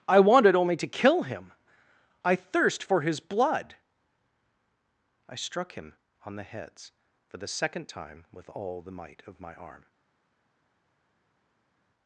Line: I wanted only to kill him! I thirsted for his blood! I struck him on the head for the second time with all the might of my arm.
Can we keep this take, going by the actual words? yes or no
no